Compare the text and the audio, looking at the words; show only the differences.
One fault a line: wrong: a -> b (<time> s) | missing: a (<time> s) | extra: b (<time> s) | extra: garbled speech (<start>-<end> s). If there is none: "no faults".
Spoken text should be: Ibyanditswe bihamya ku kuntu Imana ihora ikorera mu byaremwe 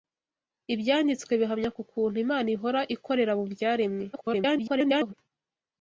extra: garbled speech (4.1-5.1 s)